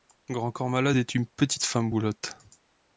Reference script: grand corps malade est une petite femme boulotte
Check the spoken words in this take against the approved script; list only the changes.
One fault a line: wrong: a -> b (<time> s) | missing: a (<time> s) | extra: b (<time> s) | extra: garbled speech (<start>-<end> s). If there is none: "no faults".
no faults